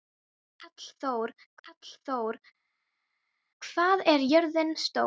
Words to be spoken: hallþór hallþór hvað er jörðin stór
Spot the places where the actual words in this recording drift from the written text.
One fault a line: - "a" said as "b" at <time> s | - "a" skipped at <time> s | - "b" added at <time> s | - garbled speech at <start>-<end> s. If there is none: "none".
none